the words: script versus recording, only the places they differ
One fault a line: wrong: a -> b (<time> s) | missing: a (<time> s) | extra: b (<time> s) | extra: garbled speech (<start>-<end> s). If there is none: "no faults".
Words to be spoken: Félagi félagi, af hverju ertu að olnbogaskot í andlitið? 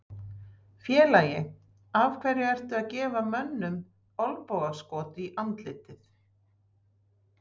missing: félagi (1.4 s)
extra: gefa mönnum (2.9 s)